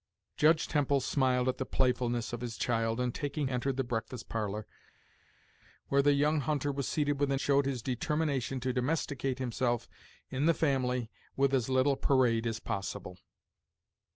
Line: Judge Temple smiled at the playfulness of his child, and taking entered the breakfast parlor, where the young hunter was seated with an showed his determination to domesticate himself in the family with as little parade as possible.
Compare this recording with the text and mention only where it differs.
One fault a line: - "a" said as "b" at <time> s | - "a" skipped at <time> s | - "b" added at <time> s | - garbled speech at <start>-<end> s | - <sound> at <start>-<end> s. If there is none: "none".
none